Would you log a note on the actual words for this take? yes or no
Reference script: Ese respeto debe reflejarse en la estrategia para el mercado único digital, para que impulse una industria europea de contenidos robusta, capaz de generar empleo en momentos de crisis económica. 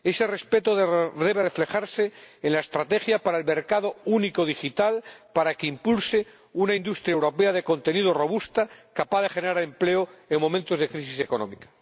no